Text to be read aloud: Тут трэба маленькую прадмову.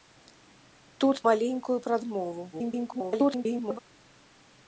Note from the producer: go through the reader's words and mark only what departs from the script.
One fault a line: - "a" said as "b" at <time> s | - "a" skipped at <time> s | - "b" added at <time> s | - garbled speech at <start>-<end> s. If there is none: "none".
- "трэба" skipped at 1.2 s
- garbled speech at 2.5-3.8 s